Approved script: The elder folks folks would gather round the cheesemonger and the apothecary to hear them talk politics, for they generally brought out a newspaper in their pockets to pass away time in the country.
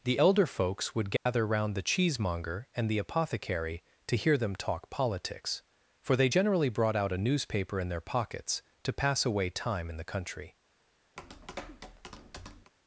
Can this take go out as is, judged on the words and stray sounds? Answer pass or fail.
fail